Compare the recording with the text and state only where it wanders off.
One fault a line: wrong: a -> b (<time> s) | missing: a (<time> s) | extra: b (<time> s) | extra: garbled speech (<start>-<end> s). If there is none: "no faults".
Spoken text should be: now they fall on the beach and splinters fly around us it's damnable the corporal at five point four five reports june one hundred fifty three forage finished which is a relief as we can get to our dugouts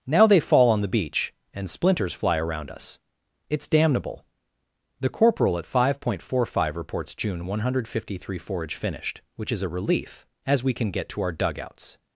no faults